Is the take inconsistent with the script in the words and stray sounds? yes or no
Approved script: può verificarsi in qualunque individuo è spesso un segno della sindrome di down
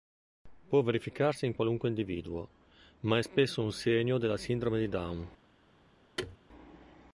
yes